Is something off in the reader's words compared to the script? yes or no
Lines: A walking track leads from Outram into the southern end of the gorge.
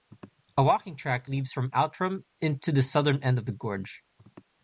no